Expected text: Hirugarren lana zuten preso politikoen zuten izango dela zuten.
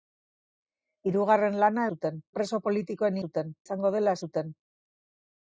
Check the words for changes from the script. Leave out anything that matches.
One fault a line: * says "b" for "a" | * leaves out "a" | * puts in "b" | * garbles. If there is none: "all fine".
all fine